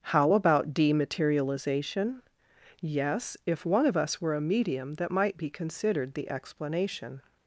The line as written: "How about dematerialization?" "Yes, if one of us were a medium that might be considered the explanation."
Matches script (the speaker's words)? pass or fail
pass